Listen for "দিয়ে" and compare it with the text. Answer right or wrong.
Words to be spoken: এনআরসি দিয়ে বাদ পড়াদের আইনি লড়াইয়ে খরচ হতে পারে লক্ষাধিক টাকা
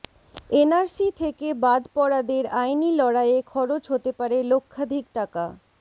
wrong